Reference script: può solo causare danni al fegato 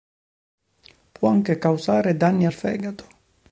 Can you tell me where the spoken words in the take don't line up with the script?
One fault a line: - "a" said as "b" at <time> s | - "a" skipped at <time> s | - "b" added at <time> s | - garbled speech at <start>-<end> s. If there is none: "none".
- "solo" said as "anche" at 1.3 s